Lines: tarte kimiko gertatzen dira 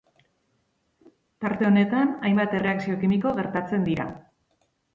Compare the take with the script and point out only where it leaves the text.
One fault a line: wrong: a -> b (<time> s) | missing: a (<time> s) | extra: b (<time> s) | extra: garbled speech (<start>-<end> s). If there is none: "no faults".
extra: honetan hainbat erreakzio (1.7 s)